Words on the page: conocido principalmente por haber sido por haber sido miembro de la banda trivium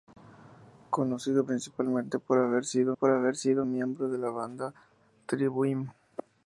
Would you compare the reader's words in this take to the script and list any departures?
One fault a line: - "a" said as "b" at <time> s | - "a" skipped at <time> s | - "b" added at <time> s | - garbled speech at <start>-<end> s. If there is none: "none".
none